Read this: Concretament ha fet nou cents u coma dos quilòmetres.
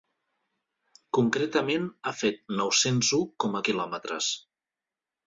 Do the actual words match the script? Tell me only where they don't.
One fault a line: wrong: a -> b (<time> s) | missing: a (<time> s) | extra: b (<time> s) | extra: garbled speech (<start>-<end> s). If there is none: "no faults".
missing: dos (3.7 s)